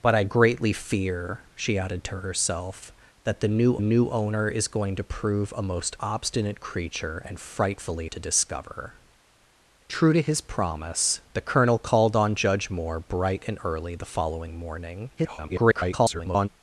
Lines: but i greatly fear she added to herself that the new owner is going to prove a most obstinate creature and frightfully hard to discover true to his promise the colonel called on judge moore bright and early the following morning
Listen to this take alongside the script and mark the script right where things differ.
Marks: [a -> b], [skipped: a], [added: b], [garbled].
but i greatly fear she added to herself that the new [added: new] owner is going to prove a most obstinate creature and frightfully [skipped: hard] to discover true to his promise the colonel called on judge moore bright and early the following morning [garbled]